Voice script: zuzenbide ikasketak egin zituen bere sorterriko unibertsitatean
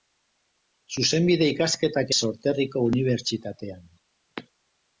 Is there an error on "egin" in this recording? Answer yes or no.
yes